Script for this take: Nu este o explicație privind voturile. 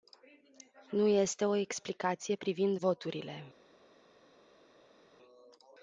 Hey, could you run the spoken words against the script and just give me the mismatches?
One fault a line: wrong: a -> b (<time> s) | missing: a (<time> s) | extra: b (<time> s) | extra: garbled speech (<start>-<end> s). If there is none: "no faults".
no faults